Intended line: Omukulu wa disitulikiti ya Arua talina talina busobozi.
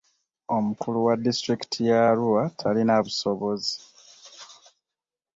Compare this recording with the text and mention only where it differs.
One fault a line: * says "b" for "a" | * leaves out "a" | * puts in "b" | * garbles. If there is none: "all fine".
* leaves out "talina"